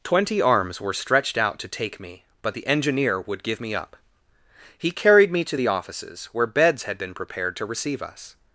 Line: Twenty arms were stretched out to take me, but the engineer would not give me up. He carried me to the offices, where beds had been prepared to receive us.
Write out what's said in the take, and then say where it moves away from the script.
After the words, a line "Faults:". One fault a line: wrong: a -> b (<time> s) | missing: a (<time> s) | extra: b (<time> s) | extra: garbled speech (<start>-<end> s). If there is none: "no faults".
Twenty arms were stretched out to take me, but the engineer would give me up. He carried me to the offices, where beds had been prepared to receive us.
Faults:
missing: not (3.4 s)